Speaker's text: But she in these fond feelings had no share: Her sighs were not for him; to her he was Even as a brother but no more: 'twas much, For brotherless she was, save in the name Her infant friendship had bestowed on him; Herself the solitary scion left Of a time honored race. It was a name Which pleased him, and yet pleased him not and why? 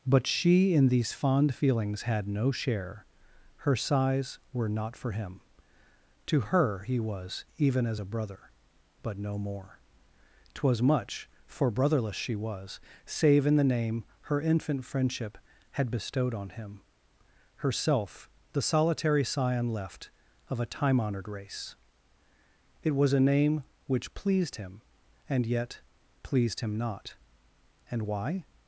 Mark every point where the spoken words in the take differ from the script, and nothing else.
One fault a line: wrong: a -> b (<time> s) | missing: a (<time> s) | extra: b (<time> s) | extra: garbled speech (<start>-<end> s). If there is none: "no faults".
no faults